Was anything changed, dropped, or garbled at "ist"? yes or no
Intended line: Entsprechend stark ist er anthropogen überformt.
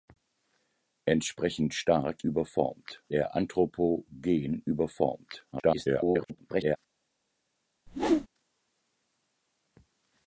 yes